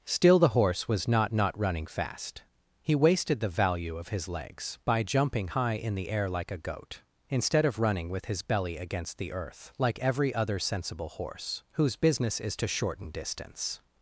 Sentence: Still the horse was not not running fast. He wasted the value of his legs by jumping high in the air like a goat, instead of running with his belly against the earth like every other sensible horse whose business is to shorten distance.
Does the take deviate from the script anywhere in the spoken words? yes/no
no